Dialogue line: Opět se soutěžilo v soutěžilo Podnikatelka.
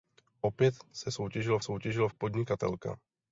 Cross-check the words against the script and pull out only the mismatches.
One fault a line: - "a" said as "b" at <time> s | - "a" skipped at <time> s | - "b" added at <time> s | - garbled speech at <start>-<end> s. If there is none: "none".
none